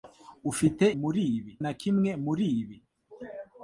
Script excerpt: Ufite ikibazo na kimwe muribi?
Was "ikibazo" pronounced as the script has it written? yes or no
no